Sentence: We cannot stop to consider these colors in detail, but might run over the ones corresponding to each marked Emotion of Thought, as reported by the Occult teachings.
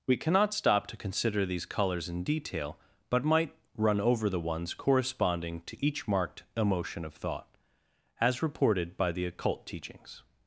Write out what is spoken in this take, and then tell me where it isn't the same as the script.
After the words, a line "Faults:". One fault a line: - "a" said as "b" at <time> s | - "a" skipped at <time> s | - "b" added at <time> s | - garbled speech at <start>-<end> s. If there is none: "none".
We cannot stop to consider these colors in detail, but might run over the ones corresponding to each marked Emotion of Thought, as reported by the Occult teachings.
Faults:
none